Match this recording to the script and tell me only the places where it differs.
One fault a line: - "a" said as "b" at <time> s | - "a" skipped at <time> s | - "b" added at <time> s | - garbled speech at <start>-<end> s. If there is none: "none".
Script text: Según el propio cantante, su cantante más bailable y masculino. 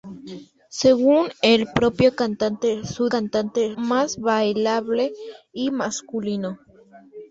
none